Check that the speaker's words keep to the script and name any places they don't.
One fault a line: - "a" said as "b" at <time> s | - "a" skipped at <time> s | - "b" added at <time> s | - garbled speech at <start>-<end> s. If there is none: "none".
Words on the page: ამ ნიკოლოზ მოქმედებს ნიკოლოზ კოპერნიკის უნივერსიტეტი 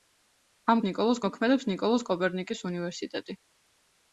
none